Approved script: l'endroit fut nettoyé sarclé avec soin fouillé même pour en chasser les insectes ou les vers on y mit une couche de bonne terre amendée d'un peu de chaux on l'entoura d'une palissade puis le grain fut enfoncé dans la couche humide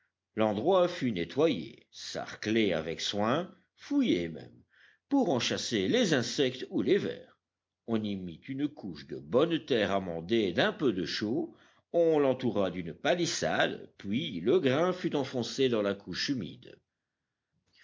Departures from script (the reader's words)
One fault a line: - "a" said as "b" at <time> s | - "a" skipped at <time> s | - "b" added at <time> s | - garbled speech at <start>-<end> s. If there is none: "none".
none